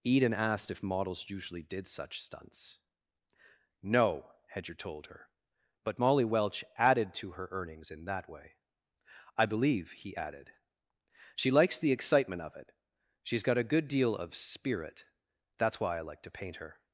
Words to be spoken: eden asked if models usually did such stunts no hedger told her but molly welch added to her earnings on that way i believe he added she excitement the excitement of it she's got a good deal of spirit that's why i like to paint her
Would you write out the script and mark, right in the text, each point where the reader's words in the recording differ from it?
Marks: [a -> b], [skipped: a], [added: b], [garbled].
eden asked if models usually did such stunts no hedger told her but molly welch added to her earnings [on -> in] that way i believe he added she [excitement -> likes] the excitement of it she's got a good deal of spirit that's why i like to paint her